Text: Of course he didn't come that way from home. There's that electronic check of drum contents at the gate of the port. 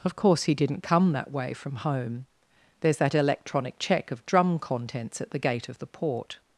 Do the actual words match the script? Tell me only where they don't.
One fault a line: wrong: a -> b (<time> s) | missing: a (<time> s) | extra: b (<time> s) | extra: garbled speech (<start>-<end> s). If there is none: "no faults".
no faults